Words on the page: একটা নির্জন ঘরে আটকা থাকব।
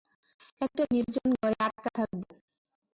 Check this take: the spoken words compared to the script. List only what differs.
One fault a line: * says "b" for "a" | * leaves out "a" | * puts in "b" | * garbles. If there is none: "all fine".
all fine